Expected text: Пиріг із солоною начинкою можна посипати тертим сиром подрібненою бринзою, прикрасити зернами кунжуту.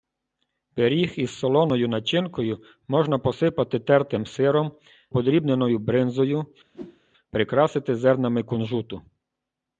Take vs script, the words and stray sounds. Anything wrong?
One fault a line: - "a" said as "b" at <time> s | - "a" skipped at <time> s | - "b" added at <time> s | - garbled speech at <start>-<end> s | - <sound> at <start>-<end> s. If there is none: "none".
- whoosh at 6.7-7.0 s